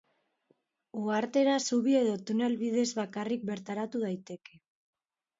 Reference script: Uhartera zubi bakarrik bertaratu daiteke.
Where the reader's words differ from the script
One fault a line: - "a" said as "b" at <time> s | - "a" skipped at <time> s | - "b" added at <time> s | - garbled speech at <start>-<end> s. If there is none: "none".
- "edo tunel bidez" added at 2.0 s